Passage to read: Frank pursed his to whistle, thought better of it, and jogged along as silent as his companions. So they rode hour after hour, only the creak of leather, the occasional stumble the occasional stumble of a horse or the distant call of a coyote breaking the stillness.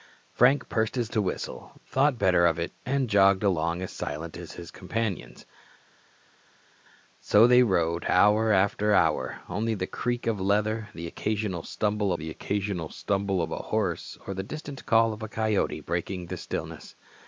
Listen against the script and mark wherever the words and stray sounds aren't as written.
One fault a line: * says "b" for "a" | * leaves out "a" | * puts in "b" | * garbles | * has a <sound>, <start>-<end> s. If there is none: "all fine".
all fine